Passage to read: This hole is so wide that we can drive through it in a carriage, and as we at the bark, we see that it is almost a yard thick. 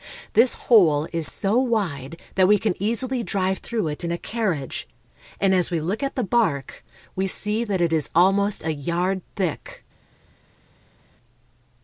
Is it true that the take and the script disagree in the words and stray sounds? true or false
true